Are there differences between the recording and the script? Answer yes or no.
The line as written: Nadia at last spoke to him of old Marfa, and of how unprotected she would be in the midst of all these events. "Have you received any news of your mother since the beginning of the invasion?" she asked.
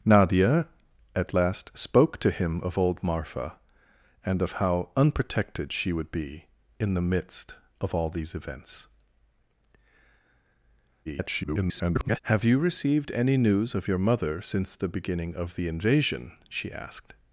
yes